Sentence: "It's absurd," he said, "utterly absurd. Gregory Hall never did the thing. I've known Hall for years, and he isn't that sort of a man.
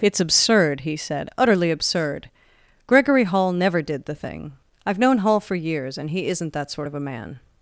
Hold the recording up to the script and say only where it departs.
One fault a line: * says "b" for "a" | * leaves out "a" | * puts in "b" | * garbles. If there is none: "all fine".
all fine